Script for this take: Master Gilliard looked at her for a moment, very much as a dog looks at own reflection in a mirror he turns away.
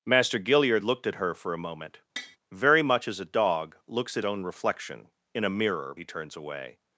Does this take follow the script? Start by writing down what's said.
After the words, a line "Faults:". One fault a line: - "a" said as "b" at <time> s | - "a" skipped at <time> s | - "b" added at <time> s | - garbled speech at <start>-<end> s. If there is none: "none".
Master Gilliard looked at her for a moment, very much as a dog looks at own reflection in a mirror he turns away.
Faults:
none